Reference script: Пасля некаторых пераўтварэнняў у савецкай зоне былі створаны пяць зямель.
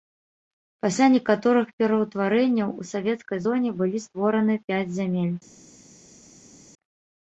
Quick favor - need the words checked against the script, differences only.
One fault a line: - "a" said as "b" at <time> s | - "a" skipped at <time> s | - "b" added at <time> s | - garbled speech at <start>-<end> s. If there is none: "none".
none